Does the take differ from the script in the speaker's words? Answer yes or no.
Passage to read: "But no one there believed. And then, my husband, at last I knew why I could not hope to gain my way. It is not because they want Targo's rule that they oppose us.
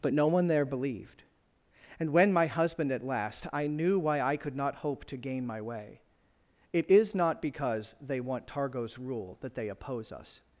yes